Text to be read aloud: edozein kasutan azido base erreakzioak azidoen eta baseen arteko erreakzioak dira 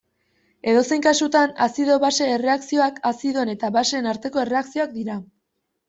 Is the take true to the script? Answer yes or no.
yes